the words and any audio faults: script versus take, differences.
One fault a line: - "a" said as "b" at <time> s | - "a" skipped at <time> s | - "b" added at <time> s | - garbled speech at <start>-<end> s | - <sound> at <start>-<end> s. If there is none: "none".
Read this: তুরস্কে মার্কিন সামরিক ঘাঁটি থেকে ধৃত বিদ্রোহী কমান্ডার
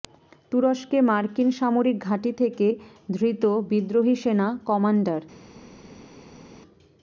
- "সেনা" added at 4.2 s